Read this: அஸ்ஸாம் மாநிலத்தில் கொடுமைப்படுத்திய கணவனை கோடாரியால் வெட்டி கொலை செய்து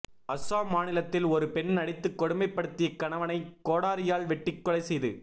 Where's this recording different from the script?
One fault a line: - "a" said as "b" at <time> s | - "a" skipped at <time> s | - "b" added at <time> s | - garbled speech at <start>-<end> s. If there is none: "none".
- "ஒரு பெண் அடித்து" added at 1.3 s